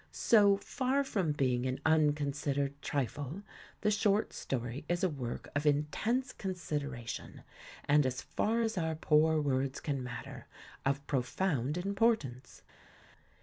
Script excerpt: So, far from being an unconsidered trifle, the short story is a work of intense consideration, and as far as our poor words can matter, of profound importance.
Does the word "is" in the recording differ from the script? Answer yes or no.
no